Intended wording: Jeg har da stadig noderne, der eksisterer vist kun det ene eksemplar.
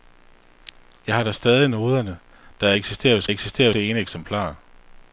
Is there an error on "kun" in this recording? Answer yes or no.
yes